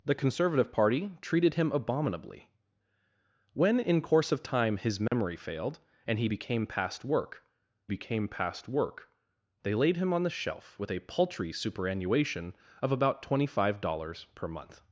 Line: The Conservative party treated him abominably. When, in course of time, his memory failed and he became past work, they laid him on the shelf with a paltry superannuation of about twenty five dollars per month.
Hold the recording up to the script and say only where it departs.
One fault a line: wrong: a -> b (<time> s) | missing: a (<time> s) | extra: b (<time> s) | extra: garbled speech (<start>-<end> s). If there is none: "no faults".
extra: became past work (7.8 s)